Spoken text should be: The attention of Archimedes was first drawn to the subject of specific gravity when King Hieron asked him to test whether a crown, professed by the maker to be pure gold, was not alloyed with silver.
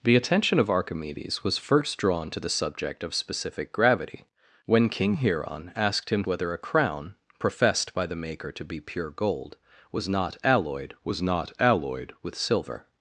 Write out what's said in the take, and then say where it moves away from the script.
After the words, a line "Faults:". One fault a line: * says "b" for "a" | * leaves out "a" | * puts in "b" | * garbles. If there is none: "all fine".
The attention of Archimedes was first drawn to the subject of specific gravity when King Hieron asked him whether a crown, professed by the maker to be pure gold, was not alloyed was not alloyed with silver.
Faults:
* leaves out "to test"
* puts in "was not alloyed"